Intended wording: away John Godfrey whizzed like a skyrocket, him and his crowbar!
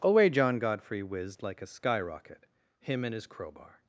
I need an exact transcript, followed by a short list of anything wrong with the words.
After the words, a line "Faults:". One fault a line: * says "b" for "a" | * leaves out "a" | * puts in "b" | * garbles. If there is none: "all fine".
away John Godfrey whizzed like a skyrocket, him and his crowbar!
Faults:
all fine